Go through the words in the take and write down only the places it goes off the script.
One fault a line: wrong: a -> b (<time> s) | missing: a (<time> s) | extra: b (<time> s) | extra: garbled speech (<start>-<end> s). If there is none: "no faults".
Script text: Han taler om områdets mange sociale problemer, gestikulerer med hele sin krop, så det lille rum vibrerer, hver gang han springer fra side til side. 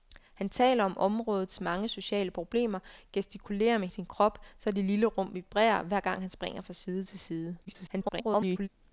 missing: hele (3.9 s)
extra: garbled speech (7.6-8.7 s)